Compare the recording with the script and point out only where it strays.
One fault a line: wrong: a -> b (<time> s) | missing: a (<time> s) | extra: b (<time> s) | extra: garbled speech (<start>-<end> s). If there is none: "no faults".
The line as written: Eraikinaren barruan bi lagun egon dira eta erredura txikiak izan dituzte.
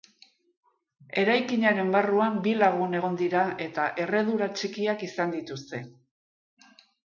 no faults